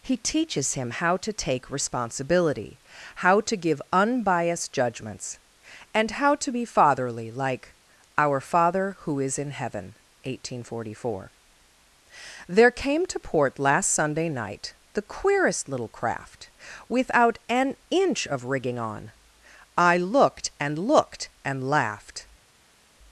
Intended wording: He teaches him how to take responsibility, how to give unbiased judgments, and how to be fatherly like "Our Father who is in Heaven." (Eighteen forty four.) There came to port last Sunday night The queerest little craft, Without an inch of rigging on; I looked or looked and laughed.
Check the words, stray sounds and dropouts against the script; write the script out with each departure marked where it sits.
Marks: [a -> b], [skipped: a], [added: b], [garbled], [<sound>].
He teaches him how to take responsibility, how to give unbiased judgments, and how to be fatherly like "Our Father who is in Heaven." (Eighteen forty four.) There came to port last Sunday night The queerest little craft, Without an inch of rigging on; I looked [or -> and] looked and laughed.